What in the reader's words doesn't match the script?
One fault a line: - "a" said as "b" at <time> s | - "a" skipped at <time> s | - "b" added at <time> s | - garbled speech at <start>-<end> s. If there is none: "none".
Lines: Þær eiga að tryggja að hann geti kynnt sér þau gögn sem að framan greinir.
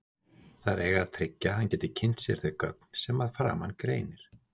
none